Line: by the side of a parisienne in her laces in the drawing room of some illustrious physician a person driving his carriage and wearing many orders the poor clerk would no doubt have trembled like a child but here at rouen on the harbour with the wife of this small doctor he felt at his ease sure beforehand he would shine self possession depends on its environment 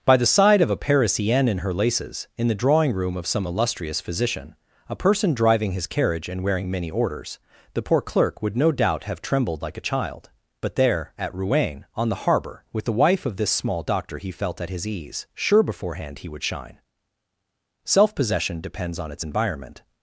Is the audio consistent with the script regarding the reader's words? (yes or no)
no